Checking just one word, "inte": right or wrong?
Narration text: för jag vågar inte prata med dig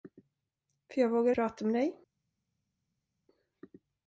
wrong